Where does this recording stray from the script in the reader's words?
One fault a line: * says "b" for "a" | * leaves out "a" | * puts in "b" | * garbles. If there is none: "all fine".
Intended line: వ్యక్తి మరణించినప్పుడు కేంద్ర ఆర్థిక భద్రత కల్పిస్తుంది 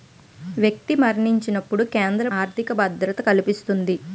all fine